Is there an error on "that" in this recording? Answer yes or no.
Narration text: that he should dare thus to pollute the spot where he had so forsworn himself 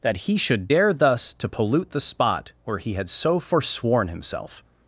no